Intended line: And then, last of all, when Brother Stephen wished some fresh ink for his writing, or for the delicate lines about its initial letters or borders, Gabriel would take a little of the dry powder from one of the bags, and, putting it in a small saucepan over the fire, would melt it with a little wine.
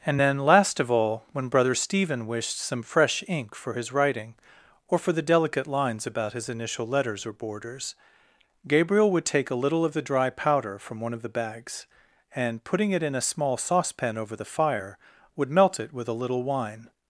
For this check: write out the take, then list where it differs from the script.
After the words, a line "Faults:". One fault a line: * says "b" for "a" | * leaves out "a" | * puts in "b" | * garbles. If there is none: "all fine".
And then, last of all, when Brother Stephen wished some fresh ink for his writing, or for the delicate lines about his initial letters or borders, Gabriel would take a little of the dry powder from one of the bags, and, putting it in a small saucepan over the fire, would melt it with a little wine.
Faults:
* says "his" for "its"